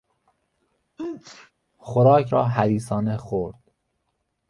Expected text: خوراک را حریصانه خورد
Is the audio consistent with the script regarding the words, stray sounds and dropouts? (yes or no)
no